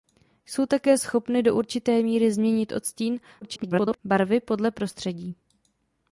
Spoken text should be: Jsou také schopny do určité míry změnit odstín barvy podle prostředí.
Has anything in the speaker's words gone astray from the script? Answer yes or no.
yes